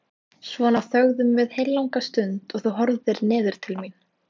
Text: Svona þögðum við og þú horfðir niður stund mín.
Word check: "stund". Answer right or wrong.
wrong